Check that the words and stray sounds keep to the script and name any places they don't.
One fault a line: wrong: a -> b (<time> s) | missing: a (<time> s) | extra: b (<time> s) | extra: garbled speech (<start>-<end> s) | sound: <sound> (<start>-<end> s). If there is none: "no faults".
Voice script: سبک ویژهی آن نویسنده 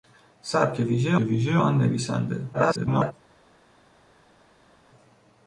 extra: ویژهی (1.2 s)
extra: garbled speech (2.5-3.1 s)